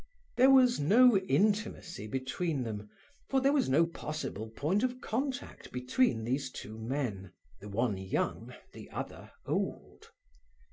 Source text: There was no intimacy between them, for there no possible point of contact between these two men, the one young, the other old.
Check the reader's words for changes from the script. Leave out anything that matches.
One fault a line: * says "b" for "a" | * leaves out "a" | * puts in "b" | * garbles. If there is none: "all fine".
* puts in "was"